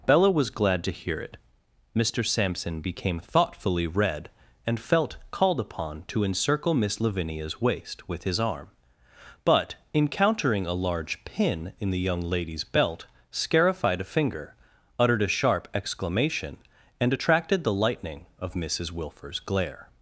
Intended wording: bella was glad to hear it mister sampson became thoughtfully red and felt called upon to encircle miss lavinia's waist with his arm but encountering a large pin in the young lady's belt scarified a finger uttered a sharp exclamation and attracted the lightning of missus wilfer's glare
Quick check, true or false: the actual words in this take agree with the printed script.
true